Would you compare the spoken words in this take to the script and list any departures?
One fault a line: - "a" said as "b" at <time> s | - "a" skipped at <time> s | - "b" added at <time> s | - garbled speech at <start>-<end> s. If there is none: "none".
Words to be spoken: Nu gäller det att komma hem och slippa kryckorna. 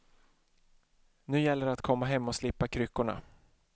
none